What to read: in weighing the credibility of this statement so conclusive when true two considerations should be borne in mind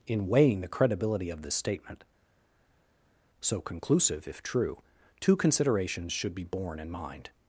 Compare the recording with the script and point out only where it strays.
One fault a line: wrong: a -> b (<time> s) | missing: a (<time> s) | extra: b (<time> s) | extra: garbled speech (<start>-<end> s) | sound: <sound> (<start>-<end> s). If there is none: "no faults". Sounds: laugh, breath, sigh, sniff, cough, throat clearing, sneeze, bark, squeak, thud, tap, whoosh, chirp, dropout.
wrong: when -> if (4.3 s)